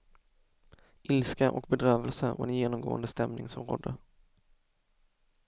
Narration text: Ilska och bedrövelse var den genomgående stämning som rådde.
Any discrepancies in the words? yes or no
no